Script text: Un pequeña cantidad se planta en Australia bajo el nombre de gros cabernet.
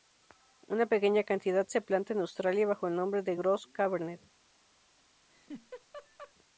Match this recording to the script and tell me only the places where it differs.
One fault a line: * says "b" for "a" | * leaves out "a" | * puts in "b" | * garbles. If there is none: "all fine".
* says "Una" for "Un"